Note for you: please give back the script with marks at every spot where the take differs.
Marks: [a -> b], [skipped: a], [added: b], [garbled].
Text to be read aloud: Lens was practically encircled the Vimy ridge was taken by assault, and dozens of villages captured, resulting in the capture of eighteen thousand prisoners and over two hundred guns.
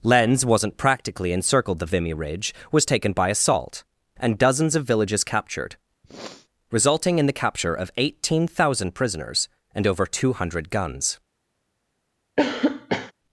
Lens [was -> wasn't] practically encircled the Vimy ridge was taken by assault, and dozens of villages captured, resulting in the capture of eighteen thousand prisoners and over two hundred guns.